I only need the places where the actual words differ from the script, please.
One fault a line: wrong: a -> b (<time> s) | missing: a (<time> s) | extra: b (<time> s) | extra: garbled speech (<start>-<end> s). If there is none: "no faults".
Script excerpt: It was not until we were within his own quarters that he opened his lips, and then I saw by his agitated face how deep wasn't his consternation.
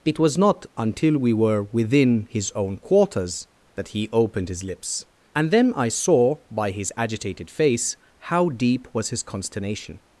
wrong: wasn't -> was (8.9 s)